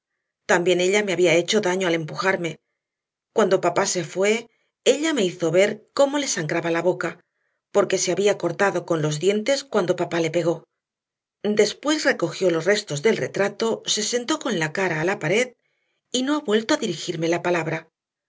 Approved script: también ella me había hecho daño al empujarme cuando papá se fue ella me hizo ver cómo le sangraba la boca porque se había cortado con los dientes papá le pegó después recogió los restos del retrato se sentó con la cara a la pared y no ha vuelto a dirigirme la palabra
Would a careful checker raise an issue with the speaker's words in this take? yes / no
yes